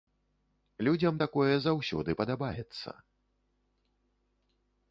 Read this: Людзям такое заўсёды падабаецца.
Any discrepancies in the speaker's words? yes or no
no